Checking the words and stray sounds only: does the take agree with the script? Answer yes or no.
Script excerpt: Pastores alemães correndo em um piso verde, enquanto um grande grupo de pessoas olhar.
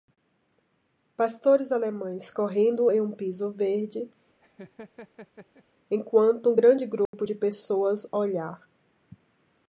no